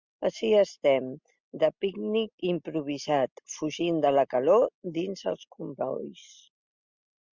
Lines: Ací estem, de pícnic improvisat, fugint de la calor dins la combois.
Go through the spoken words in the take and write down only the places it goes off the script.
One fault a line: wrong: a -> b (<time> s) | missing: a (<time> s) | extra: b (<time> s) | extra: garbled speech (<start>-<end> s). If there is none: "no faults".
wrong: la -> els (5.3 s)